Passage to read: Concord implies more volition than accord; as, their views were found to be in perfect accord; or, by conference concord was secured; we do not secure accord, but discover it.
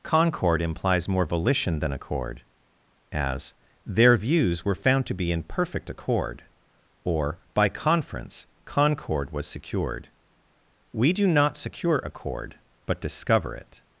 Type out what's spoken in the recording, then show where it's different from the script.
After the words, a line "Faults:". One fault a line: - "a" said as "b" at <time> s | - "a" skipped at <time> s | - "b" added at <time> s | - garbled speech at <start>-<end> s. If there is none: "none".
Concord implies more volition than accord; as, their views were found to be in perfect accord; or, by conference concord was secured; we do not secure accord, but discover it.
Faults:
none